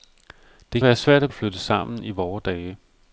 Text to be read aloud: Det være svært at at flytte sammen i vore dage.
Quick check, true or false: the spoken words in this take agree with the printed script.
true